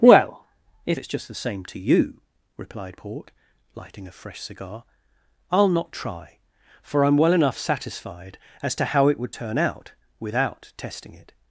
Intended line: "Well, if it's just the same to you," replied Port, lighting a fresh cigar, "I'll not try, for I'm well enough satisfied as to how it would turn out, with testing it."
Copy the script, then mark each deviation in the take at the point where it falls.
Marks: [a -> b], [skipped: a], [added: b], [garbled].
"Well, if it's just the same to you," replied Port, lighting a fresh cigar, "I'll not try, for I'm well enough satisfied as to how it would turn out, [with -> without] testing it."